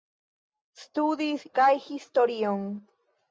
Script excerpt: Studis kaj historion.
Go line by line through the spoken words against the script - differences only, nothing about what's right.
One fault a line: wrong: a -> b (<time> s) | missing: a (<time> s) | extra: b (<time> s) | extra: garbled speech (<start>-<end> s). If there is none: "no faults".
no faults